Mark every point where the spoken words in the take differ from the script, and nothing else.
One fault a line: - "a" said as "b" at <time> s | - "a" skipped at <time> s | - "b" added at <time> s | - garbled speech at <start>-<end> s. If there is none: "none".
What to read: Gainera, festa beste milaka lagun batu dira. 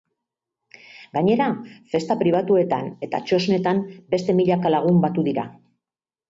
- "pribatuetan eta txosnetan" added at 2.2 s